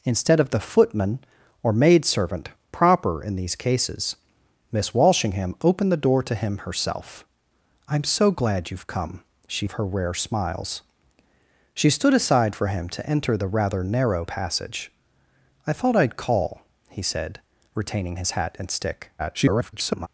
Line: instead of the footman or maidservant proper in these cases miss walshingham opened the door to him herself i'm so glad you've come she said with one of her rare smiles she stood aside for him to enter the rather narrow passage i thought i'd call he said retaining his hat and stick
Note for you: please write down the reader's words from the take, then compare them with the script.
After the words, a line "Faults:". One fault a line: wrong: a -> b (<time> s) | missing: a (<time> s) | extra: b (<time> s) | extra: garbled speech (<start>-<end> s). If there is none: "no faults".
instead of the footman or maidservant proper in these cases miss walshingham opened the door to him herself i'm so glad you've come she of her rare smiles she stood aside for him to enter the rather narrow passage i thought i'd call he said retaining his hat and stick [garbled]
Faults:
missing: said with one (9.7 s)
extra: garbled speech (19.2-20.1 s)